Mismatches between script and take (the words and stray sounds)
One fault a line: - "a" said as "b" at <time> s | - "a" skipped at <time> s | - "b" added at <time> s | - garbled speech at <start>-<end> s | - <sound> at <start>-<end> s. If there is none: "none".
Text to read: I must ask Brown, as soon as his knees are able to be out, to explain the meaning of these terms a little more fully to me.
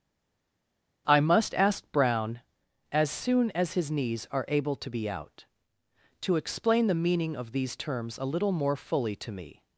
none